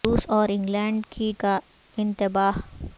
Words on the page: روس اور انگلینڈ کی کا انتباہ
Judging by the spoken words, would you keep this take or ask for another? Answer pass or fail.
pass